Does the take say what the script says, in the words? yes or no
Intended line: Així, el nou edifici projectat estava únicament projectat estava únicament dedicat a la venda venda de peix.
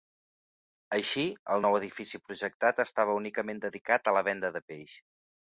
no